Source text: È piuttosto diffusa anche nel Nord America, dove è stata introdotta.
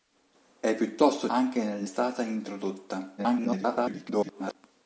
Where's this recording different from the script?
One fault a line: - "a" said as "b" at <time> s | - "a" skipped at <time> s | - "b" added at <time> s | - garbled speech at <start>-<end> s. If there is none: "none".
- "diffusa" skipped at 1.3 s
- "Nord America dove" skipped at 1.8 s
- garbled speech at 3.2-4.6 s